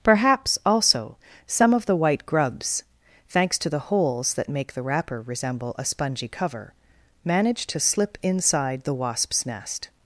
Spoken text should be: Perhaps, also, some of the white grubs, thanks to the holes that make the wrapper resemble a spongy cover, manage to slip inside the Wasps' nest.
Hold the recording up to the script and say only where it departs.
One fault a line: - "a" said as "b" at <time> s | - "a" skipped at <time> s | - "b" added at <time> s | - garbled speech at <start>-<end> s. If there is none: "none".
none